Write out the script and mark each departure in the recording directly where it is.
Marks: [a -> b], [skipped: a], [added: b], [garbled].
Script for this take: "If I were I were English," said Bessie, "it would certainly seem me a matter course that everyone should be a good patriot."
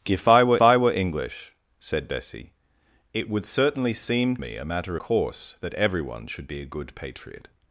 "If I were I were English," said Bessie, "it would certainly seem me a matter course that everyone should be a good patriot."